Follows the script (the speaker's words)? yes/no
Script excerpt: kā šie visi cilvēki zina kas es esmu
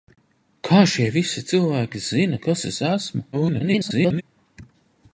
no